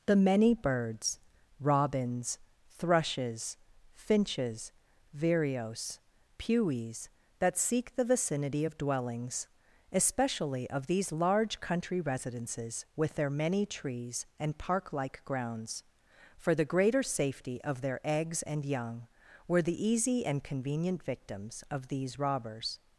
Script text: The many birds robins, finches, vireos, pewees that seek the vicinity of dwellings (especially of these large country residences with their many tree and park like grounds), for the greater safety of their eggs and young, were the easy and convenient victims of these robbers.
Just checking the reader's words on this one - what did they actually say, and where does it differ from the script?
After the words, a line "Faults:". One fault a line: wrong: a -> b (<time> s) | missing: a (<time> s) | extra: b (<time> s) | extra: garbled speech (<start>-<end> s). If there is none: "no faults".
The many birds robins, thrushes, finches, vireos, pewees that seek the vicinity of dwellings (especially of these large country residences with their many trees and park like grounds), for the greater safety of their eggs and young, were the easy and convenient victims of these robbers.
Faults:
extra: thrushes (2.7 s)
wrong: tree -> trees (13.7 s)